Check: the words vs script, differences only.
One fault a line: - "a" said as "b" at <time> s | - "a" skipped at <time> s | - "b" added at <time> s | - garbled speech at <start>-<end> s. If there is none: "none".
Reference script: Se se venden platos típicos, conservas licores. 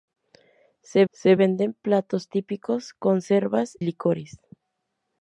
none